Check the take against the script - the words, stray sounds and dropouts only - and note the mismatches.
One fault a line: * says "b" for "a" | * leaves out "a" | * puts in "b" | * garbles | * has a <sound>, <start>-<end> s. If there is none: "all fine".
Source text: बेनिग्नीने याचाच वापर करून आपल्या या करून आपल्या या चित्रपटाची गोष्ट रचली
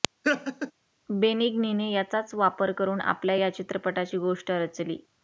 * has a laugh, 0.2-0.7 s
* leaves out "करून आपल्या या"